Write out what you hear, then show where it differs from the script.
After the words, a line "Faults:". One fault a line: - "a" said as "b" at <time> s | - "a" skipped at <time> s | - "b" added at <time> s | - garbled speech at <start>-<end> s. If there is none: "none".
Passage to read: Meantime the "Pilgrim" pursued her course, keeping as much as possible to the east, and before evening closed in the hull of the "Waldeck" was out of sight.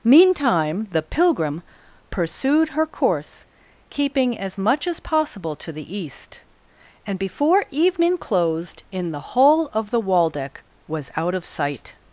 Meantime the "Pilgrim" pursued her course, keeping as much as possible to the east, and before evening closed in the hull of the "Waldeck" was out of sight.
Faults:
none